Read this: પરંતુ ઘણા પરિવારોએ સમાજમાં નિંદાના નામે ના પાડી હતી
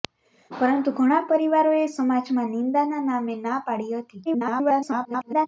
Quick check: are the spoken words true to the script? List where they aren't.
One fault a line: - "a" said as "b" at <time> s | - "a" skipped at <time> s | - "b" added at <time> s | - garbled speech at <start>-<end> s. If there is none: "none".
- garbled speech at 4.3-5.5 s